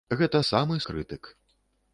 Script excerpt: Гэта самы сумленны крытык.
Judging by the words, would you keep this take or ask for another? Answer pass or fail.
fail